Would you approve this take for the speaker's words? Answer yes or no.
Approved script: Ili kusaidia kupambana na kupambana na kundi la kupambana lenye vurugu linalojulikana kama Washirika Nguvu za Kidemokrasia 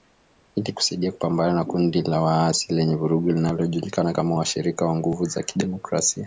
no